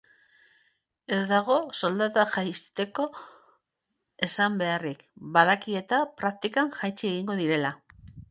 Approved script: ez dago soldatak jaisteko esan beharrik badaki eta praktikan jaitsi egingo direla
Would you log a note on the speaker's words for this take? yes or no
no